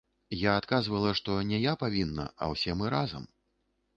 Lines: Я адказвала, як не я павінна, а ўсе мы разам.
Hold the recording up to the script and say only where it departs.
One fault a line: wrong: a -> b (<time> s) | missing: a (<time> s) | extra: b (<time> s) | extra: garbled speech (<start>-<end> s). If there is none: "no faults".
wrong: як -> што (1.2 s)